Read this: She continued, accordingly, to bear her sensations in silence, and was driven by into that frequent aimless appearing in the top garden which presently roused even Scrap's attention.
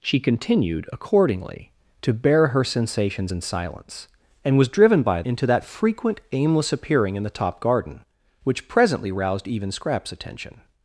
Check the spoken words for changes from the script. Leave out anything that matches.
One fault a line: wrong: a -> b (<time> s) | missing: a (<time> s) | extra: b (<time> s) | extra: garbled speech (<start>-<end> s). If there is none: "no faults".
no faults